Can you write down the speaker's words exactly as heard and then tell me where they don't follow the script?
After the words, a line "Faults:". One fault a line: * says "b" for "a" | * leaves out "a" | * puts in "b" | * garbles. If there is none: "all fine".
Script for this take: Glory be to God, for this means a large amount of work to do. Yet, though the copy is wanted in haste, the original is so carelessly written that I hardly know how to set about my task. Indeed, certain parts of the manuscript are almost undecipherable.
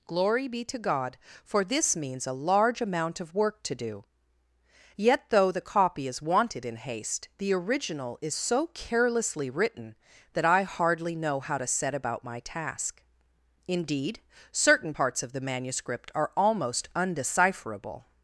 Glory be to God, for this means a large amount of work to do. Yet, though the copy is wanted in haste, the original is so carelessly written that I hardly know how to set about my task. Indeed, certain parts of the manuscript are almost undecipherable.
Faults:
all fine